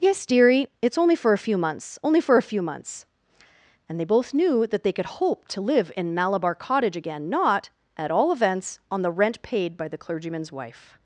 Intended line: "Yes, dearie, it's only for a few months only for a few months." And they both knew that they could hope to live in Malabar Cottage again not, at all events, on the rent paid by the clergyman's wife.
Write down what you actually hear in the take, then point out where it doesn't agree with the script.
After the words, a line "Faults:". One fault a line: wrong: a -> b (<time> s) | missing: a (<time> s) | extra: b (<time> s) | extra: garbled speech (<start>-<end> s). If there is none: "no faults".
"Yes, dearie, it's only for a few months only for a few months." And they both knew that they could hope to live in Malabar Cottage again not, at all events, on the rent paid by the clergyman's wife.
Faults:
no faults